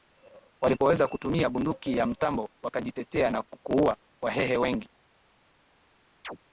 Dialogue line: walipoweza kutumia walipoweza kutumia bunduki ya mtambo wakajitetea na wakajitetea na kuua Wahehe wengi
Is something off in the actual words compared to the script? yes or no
yes